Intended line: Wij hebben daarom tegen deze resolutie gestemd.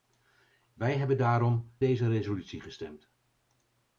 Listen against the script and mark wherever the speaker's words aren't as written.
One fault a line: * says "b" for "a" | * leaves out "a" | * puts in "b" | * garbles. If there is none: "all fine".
* leaves out "tegen"